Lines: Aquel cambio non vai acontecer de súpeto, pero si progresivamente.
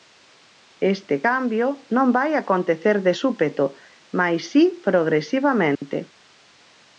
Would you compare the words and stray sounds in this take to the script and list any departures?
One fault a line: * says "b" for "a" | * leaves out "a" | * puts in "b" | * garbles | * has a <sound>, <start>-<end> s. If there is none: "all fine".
* says "Este" for "Aquel"
* says "mais" for "pero"
* has a dropout, 5.7-5.8 s